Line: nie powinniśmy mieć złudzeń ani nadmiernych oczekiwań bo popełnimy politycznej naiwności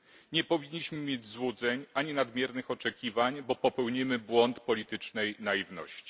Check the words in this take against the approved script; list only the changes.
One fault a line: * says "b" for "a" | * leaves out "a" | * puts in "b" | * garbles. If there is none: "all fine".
* puts in "błąd"